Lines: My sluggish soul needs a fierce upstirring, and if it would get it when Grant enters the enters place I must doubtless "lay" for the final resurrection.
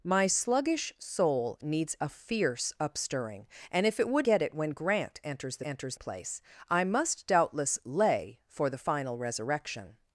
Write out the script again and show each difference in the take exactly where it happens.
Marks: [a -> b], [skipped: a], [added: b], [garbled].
My sluggish soul needs a fierce upstirring, and if it would get it when Grant enters the enters place I must doubtless "lay" for the final resurrection.